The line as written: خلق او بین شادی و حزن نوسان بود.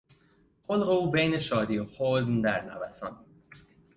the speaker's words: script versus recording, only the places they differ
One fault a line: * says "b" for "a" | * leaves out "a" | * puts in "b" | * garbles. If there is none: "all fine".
* puts in "در"